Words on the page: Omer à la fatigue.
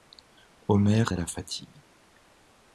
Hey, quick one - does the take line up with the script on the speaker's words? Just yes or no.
yes